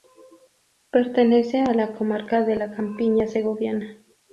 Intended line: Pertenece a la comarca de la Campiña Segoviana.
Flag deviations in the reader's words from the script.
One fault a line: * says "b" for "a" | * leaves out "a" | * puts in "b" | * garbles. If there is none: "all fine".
all fine